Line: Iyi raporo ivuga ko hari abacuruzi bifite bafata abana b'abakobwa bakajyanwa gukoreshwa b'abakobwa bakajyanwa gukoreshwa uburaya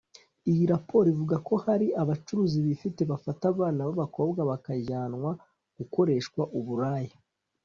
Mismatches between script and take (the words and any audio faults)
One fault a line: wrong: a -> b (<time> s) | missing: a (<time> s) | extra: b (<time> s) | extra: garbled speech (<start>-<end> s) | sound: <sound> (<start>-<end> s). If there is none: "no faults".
missing: b'abakobwa bakajyanwa gukoreshwa (6.4 s)